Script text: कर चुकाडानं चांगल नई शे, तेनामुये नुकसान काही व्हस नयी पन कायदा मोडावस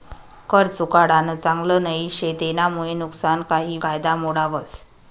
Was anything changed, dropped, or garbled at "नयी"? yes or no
yes